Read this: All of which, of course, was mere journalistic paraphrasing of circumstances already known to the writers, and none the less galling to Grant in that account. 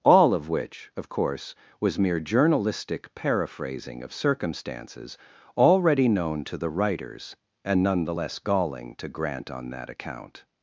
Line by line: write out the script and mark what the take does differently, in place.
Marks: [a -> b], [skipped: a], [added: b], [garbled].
All of which, of course, was mere journalistic paraphrasing of circumstances already known to the writers, and none the less galling to Grant [in -> on] that account.